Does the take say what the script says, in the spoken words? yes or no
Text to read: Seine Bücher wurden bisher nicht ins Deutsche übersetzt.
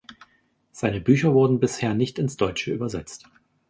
yes